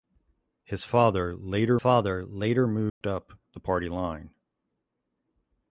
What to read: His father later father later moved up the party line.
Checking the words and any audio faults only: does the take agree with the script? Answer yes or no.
no